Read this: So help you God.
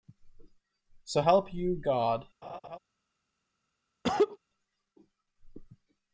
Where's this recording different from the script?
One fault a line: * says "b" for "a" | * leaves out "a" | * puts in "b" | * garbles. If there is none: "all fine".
all fine